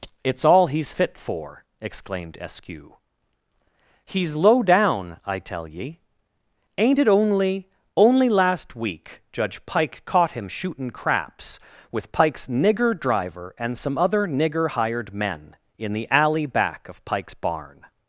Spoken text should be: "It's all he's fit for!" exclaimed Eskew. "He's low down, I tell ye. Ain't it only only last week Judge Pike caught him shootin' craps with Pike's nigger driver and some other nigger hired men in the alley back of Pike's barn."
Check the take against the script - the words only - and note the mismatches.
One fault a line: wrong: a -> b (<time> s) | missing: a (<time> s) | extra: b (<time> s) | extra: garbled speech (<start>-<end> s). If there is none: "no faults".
no faults